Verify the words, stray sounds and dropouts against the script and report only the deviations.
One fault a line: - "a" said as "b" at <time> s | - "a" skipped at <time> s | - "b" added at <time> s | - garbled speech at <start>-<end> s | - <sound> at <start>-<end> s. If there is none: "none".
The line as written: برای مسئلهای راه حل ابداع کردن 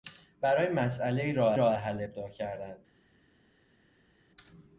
- "راه" added at 1.5 s